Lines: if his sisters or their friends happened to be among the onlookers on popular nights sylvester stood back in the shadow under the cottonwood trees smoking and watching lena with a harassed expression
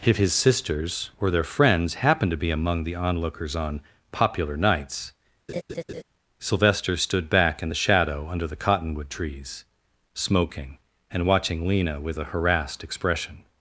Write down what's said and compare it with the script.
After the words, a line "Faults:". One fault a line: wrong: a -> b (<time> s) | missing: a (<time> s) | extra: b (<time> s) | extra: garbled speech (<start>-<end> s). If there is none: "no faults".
if his sisters or their friends happened to be among the onlookers on popular nights sylvester stood back in the shadow under the cottonwood trees smoking and watching lena with a harassed expression
Faults:
no faults